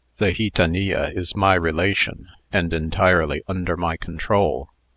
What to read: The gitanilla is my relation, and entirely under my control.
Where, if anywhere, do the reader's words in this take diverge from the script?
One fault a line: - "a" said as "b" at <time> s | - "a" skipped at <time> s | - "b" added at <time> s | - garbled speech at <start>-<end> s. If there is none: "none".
none